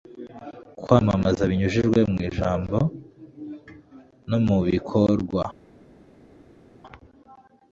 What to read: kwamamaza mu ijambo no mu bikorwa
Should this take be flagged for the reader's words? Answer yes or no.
yes